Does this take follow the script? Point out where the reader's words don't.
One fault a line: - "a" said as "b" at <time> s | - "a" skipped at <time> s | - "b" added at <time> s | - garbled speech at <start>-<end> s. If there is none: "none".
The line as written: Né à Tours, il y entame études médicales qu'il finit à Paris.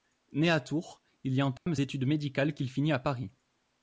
none